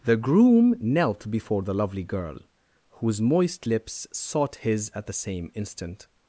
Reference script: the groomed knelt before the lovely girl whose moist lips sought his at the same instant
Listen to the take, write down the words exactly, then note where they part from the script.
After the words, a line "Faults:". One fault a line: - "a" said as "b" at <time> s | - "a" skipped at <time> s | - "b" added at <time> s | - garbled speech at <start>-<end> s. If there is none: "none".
the groom knelt before the lovely girl whose moist lips sought his at the same instant
Faults:
- "groomed" said as "groom" at 0.2 s